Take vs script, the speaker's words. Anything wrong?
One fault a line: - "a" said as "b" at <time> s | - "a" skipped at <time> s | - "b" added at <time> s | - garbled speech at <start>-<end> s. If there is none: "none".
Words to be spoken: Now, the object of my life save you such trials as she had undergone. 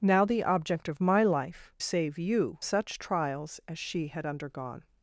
none